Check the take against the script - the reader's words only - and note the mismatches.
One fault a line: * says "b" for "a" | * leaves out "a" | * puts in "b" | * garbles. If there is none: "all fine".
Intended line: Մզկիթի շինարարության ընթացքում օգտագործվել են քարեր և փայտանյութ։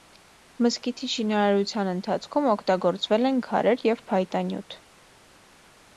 all fine